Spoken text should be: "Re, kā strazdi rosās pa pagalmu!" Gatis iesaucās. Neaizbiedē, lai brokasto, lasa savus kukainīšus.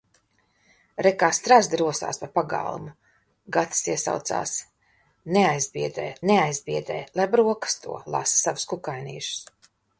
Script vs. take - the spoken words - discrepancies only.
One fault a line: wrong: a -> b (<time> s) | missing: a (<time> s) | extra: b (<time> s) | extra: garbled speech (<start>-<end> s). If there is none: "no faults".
extra: neaizbiedē (6.3 s)